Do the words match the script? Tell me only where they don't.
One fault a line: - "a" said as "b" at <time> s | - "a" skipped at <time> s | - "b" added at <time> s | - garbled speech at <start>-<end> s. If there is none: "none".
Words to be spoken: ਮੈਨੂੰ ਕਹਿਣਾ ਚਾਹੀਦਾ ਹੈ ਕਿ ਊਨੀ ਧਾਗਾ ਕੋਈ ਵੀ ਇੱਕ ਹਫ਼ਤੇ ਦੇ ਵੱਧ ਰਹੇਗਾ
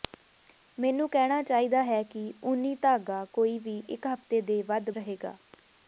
none